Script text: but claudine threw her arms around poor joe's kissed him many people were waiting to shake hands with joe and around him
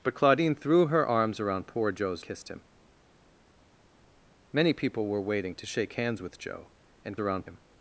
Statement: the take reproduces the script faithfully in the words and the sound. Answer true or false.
true